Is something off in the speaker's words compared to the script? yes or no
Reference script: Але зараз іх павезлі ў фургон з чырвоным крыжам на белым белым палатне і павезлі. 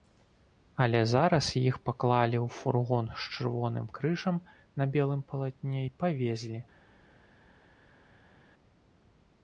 yes